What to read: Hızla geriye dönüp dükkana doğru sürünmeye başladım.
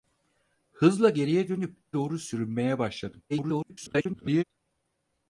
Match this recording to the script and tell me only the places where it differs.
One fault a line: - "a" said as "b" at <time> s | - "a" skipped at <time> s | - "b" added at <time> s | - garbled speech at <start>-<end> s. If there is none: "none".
- "dükkana" skipped at 1.8 s
- garbled speech at 3.3-4.4 s